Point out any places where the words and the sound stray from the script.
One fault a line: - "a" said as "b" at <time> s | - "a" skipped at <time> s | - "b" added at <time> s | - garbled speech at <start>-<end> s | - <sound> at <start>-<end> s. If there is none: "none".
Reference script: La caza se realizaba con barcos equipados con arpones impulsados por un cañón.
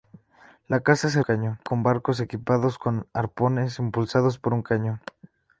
- "realizaba" said as "cañón" at 1.2 s